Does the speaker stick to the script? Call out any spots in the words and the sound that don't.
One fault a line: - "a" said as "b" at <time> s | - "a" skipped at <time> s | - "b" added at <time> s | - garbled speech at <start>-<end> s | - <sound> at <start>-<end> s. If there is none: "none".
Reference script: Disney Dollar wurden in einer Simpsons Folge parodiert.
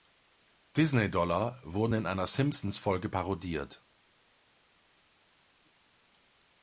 none